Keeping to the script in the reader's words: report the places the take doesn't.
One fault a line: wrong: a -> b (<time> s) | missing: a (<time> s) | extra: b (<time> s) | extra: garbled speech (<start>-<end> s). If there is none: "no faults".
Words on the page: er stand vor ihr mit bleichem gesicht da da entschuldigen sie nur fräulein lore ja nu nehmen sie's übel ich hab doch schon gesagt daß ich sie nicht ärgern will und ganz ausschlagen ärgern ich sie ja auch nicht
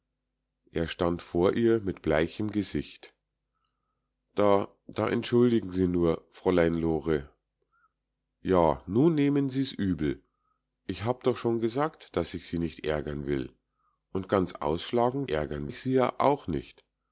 no faults